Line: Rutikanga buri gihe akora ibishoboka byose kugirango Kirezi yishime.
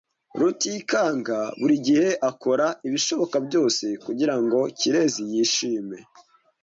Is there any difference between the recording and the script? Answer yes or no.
no